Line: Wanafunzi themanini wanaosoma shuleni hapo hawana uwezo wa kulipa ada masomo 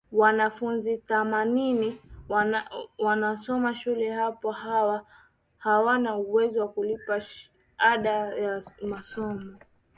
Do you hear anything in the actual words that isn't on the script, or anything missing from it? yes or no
yes